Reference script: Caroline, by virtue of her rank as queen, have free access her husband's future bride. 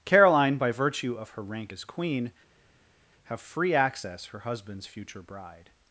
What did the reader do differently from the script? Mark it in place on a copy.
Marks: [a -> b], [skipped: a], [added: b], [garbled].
Caroline, by virtue of her rank as queen, have free access her husband's future bride.